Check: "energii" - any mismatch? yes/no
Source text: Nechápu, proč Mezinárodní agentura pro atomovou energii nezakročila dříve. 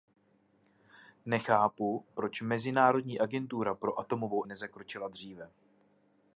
yes